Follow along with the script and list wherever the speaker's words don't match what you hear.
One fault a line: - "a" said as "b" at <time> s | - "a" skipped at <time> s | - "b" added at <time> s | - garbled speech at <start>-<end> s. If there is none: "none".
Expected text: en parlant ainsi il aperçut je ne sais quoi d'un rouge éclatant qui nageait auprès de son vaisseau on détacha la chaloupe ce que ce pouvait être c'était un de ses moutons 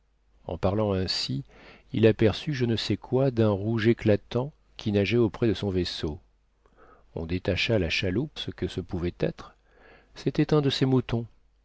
none